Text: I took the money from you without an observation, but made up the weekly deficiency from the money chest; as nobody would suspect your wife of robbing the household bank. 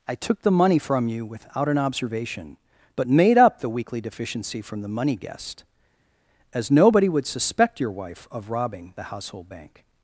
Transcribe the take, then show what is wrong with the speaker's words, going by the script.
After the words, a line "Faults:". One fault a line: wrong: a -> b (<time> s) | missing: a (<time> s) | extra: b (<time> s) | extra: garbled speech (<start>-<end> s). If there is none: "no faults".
I took the money from you without an observation, but made up the weekly deficiency from the money guest; as nobody would suspect your wife of robbing the household bank.
Faults:
wrong: chest -> guest (5.2 s)